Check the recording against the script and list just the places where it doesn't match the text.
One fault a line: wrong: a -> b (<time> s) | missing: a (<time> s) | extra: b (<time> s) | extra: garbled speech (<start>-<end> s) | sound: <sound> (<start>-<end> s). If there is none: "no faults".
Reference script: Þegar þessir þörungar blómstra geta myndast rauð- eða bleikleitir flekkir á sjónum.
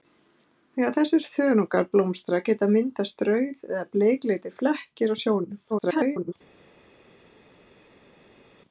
extra: garbled speech (5.7-6.3 s)